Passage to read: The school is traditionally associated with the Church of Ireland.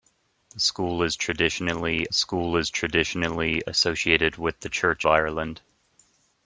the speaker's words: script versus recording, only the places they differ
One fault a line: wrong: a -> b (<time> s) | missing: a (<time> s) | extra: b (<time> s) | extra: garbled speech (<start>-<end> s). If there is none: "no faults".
extra: school is traditionally (2.1 s)
missing: of (5.1 s)